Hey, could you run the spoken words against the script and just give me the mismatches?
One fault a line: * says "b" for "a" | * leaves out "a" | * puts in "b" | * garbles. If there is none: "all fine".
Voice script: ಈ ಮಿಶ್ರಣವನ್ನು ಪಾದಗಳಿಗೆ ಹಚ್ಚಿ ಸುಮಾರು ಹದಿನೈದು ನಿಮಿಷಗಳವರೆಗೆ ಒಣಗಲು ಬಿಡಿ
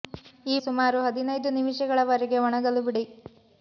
* leaves out "ಮಿಶ್ರಣವನ್ನು ಪಾದಗಳಿಗೆ ಹಚ್ಚಿ"